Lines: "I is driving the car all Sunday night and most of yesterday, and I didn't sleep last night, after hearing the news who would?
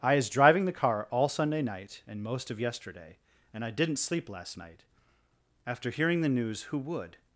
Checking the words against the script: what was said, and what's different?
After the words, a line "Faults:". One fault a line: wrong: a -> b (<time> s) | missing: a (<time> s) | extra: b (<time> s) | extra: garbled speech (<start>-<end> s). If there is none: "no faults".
"I is driving the car all Sunday night and most of yesterday, and I didn't sleep last night, after hearing the news who would?
Faults:
no faults